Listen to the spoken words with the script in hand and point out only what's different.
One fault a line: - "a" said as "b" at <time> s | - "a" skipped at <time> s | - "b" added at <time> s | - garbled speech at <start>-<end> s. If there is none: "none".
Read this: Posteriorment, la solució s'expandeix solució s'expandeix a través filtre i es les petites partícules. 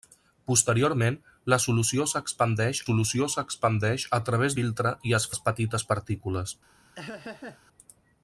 none